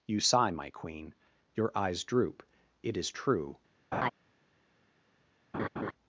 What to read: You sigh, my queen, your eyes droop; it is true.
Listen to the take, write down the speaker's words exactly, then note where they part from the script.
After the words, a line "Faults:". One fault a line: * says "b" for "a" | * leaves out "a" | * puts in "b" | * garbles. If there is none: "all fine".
You sigh, my queen, your eyes droop; it is true.
Faults:
all fine